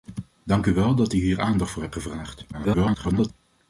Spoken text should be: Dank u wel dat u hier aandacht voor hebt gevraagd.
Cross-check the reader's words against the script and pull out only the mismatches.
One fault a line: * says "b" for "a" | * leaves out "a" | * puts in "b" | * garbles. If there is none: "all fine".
* garbles